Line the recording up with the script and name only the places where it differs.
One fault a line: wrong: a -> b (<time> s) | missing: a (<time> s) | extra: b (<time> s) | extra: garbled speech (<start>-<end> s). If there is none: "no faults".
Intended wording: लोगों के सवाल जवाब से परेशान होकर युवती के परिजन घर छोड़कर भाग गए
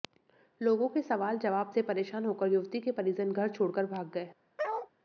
no faults